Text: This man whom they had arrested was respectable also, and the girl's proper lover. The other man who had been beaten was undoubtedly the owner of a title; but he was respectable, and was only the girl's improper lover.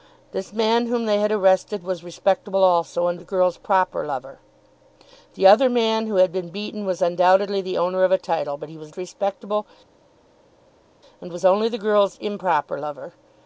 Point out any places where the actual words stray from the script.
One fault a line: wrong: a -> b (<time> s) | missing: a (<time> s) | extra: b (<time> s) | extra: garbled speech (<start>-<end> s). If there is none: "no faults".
no faults